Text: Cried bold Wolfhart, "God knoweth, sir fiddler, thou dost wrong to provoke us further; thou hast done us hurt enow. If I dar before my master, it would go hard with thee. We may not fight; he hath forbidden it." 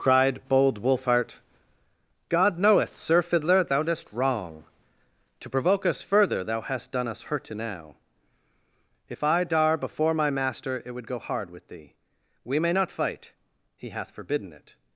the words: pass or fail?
pass